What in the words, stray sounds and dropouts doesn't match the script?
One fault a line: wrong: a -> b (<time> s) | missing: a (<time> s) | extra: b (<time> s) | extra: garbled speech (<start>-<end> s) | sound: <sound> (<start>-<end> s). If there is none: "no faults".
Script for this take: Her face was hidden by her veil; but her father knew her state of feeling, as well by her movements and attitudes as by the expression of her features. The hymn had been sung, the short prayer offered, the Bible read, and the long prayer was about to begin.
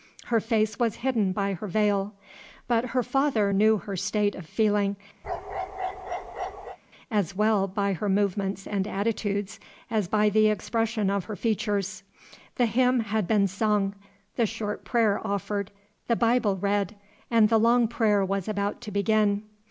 sound: bark (5.2-6.8 s)